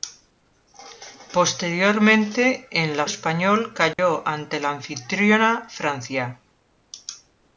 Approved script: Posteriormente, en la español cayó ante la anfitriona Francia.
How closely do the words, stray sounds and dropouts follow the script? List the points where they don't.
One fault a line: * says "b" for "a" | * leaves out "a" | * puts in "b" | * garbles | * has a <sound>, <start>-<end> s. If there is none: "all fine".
* has a dropout, 3.9-4.0 s